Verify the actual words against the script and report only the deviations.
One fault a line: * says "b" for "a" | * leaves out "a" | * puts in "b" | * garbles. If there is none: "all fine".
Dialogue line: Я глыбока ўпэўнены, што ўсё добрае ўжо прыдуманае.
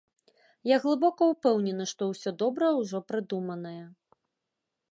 all fine